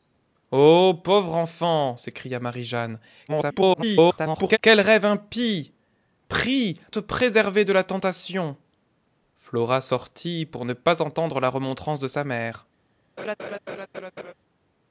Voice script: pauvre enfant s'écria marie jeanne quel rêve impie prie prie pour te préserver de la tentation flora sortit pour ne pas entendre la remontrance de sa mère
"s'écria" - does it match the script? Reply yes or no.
yes